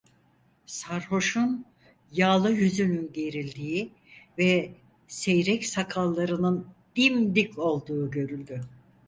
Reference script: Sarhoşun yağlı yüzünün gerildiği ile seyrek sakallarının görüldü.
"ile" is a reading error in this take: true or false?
true